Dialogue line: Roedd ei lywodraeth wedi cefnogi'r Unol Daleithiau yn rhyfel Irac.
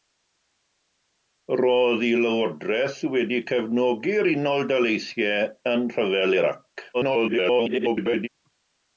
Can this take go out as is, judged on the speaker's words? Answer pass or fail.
fail